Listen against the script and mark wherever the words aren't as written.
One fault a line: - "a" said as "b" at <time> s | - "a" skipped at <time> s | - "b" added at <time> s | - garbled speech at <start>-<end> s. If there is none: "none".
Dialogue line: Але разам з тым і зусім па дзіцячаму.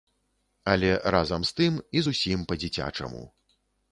none